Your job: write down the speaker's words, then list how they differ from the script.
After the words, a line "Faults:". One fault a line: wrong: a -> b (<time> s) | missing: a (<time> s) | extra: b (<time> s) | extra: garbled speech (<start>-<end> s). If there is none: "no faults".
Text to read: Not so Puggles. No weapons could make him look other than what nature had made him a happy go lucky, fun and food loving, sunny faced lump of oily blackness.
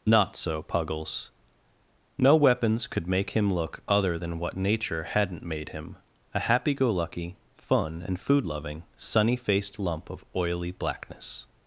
Not so Puggles. No weapons could make him look other than what nature hadn't made him a happy go lucky, fun and food loving, sunny faced lump of oily blackness.
Faults:
wrong: had -> hadn't (5.0 s)